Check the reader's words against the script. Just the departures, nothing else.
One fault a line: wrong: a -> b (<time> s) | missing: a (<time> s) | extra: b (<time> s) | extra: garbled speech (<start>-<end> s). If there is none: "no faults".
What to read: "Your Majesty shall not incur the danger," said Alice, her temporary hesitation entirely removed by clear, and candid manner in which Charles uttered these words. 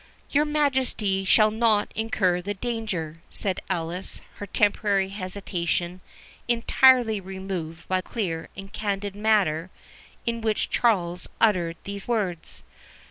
no faults